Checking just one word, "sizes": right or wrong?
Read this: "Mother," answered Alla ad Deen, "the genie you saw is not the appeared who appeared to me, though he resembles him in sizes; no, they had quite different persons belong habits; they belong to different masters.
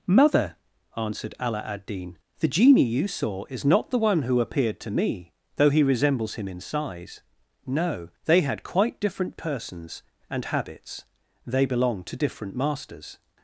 wrong